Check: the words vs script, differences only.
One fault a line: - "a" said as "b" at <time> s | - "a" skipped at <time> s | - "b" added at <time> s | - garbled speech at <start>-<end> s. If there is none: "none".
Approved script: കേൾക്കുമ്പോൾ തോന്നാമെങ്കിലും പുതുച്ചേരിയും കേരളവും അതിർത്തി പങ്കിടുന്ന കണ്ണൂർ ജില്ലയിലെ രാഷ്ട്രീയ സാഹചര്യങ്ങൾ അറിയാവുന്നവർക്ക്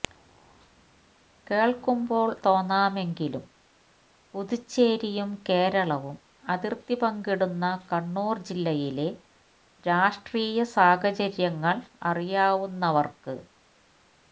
none